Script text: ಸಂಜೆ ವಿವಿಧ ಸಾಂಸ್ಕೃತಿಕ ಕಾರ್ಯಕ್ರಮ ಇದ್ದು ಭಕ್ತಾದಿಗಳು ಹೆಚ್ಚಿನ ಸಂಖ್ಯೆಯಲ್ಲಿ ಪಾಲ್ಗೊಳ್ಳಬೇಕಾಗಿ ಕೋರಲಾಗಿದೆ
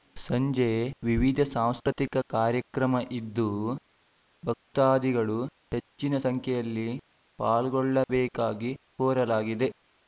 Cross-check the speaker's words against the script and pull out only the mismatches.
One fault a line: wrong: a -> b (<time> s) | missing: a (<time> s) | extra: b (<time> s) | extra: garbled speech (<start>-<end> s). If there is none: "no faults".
no faults